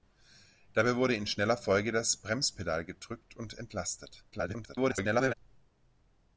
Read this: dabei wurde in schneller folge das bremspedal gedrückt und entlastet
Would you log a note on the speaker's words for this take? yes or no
yes